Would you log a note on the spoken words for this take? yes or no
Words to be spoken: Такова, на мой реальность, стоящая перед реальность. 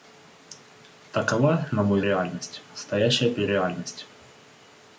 no